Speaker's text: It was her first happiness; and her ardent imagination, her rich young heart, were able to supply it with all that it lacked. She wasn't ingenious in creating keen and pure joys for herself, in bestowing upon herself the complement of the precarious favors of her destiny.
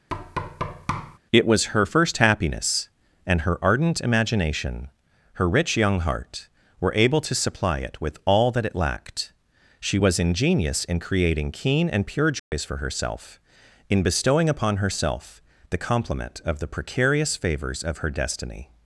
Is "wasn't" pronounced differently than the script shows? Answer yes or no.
yes